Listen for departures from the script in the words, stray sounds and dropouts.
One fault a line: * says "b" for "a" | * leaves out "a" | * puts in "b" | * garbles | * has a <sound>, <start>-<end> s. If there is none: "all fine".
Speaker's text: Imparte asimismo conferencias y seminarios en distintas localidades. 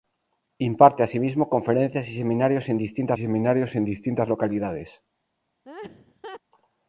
* puts in "seminarios en distintas"
* has a laugh, 5.6-6.4 s